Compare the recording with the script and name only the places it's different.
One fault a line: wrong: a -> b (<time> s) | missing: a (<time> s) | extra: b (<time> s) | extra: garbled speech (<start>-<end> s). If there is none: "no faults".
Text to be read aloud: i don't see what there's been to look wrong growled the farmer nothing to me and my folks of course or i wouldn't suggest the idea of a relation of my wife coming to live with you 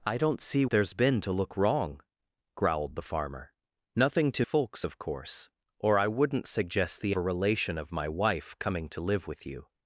missing: what (0.7 s)
missing: me and my (4.5 s)
missing: idea of (7.2 s)